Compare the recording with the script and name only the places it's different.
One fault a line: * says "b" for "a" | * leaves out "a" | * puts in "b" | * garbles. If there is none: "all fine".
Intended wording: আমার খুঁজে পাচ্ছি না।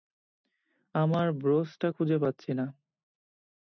* puts in "ব্রোচটা"